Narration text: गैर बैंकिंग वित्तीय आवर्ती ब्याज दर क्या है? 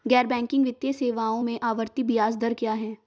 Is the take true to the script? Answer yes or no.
no